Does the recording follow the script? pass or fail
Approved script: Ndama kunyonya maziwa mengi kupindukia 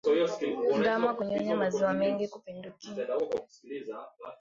pass